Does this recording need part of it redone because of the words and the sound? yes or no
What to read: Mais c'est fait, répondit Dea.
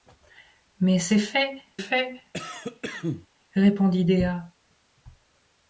yes